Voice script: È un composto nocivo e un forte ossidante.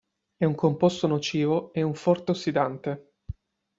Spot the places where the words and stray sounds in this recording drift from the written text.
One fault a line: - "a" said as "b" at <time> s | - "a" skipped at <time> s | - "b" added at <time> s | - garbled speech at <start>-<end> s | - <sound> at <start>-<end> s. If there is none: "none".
none